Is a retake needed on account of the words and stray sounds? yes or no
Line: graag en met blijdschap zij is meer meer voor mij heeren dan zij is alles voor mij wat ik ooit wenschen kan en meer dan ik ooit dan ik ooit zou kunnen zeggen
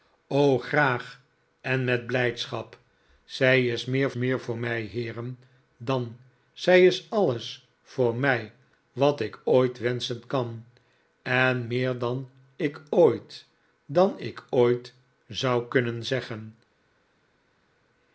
no